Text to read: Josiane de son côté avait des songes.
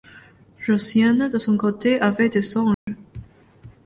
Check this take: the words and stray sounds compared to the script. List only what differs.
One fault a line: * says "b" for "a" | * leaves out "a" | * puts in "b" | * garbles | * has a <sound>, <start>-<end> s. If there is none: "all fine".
* has a dropout, 2.7-2.9 s